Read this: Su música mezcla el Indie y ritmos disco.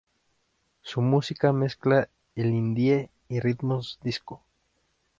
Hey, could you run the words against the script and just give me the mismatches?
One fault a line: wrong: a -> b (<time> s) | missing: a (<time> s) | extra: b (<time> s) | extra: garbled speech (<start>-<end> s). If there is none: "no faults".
no faults